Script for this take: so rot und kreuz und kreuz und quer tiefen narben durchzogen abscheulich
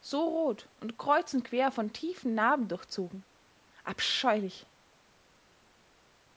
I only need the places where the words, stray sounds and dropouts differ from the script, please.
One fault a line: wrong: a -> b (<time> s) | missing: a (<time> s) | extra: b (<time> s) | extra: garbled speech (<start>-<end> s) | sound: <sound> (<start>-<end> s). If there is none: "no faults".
wrong: kreuz und quer -> quer von (1.4 s)